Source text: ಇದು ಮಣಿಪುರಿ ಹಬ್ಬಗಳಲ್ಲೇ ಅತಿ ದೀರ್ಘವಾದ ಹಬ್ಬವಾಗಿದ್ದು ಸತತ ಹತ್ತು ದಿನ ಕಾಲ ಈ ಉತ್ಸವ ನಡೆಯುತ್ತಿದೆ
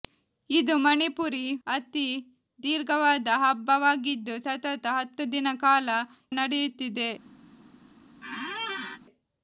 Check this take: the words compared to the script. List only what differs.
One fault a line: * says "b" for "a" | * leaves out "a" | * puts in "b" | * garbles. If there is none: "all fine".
* leaves out "ಹಬ್ಬಗಳಲ್ಲೇ"
* leaves out "ಈ ಉತ್ಸವ"